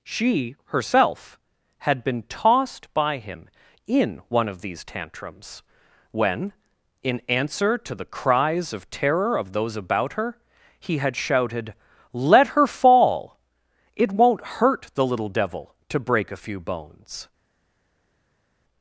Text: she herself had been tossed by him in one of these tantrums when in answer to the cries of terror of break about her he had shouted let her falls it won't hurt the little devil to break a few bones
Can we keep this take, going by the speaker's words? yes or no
no